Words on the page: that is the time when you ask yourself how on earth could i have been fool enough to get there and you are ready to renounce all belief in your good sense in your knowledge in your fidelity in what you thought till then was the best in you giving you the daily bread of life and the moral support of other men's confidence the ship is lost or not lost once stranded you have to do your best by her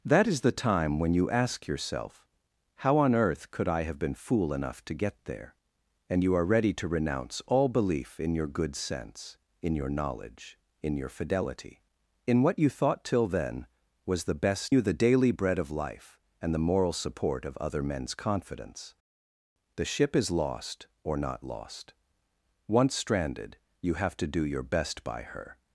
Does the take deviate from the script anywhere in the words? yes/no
yes